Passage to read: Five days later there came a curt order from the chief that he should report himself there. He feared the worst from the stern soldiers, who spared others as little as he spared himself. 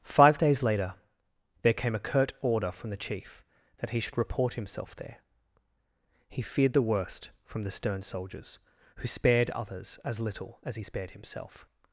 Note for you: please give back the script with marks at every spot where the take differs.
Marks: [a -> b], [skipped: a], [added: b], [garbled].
Five days later there came a curt order from the chief that he should report himself there. He feared the worst from the stern soldiers, who spared others as little as he spared himself.